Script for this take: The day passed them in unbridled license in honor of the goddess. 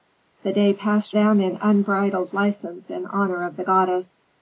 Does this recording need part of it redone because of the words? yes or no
no